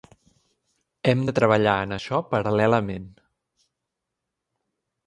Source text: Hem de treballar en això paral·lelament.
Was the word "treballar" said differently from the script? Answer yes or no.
no